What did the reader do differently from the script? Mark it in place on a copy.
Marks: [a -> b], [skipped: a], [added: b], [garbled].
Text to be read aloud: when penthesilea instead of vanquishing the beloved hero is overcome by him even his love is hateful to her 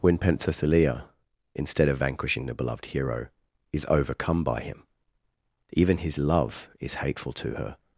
when penthesilea instead of vanquishing the beloved hero is overcome by him even his love is hateful to her